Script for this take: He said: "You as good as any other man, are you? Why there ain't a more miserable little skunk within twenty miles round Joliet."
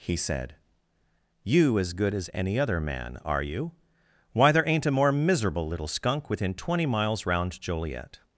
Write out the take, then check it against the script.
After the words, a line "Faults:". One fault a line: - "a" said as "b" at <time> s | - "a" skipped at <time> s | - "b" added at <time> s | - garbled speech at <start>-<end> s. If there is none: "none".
He said: "You as good as any other man, are you? Why there ain't a more miserable little skunk within twenty miles round Joliet."
Faults:
none